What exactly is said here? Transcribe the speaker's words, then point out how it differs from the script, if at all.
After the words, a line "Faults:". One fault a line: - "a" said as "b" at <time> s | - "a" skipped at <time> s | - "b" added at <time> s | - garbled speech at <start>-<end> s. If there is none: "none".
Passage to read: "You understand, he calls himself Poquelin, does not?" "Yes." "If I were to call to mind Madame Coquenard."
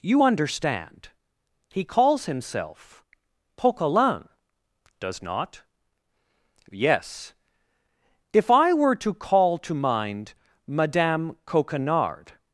"You understand, he calls himself Poquelin, does not?" "Yes." "If I were to call to mind Madame Coquenard."
Faults:
none